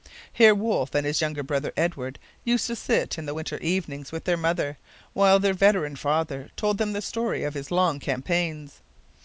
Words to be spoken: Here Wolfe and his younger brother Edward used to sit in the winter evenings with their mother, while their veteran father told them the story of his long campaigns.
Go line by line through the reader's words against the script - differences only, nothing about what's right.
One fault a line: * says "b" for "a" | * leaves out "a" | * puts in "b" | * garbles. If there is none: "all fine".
all fine